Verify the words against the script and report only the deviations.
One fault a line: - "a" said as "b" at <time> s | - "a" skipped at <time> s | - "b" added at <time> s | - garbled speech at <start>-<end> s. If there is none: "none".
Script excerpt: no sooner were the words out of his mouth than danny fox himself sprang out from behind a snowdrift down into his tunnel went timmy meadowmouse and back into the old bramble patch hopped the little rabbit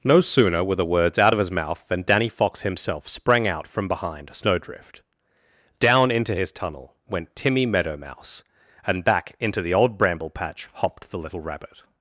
- "a" skipped at 4.3 s